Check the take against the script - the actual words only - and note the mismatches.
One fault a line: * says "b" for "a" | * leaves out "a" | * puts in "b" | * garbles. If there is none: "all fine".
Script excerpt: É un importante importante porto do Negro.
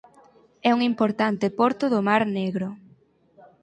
* leaves out "importante"
* puts in "Mar"